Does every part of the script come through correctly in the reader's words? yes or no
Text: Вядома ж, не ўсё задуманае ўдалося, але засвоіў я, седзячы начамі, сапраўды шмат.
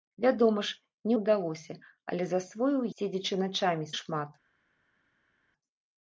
no